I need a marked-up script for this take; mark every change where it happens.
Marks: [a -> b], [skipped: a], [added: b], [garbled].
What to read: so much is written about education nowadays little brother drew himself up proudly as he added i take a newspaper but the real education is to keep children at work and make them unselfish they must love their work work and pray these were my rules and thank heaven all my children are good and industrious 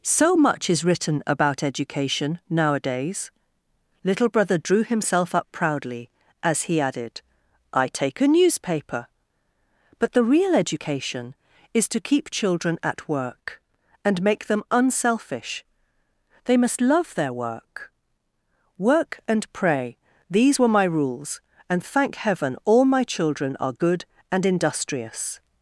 so much is written about education nowadays little brother drew himself up proudly as he added i take a newspaper but the real education is to keep children at work and make them unselfish they must love their work work and pray these were my rules and thank heaven all my children are good and industrious